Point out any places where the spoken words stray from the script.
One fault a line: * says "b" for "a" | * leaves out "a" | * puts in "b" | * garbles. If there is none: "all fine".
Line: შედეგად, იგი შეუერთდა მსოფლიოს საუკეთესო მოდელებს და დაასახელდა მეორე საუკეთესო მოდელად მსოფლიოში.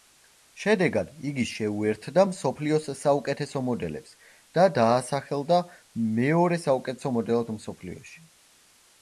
all fine